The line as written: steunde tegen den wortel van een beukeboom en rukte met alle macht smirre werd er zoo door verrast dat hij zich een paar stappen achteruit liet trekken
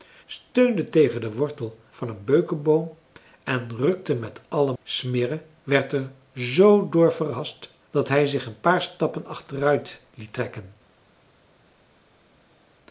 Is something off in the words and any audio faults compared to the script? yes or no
yes